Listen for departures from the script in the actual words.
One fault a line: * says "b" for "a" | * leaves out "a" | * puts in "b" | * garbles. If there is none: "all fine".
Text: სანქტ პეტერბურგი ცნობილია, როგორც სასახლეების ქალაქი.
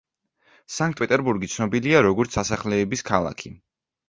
all fine